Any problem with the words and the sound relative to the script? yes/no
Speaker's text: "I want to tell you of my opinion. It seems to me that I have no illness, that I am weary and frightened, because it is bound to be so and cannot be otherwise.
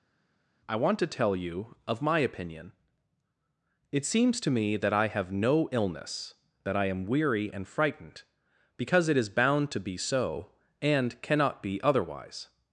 no